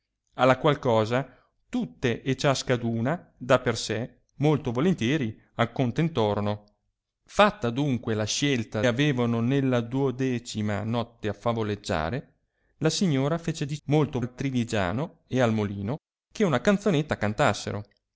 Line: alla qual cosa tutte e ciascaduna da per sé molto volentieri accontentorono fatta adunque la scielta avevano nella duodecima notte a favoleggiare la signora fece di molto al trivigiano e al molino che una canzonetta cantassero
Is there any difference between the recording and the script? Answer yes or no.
no